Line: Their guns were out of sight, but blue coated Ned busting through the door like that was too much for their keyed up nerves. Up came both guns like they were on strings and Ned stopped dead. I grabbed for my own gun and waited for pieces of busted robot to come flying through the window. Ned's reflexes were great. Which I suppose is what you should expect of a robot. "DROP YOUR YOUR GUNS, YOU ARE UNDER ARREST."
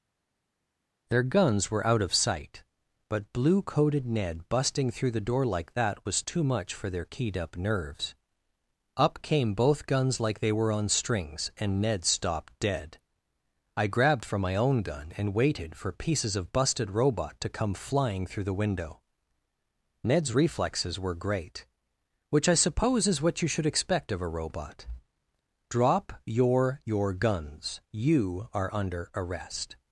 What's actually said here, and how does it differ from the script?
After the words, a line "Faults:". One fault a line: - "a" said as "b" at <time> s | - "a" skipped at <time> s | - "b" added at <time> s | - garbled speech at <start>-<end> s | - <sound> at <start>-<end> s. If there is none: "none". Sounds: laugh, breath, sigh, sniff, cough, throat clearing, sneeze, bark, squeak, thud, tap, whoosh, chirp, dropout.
Their guns were out of sight, but blue coated Ned busting through the door like that was too much for their keyed up nerves. Up came both guns like they were on strings and Ned stopped dead. I grabbed for my own gun and waited for pieces of busted robot to come flying through the window. Ned's reflexes were great. Which I suppose is what you should expect of a robot. "DROP YOUR YOUR GUNS, YOU ARE UNDER ARREST."
Faults:
none